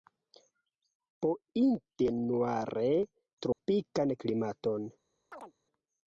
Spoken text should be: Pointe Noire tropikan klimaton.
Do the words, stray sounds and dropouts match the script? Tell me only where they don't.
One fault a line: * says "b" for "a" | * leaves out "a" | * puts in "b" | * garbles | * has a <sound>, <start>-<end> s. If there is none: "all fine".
* has a dropout, 3.5-3.6 s
* has a chirp, 5.3-5.5 s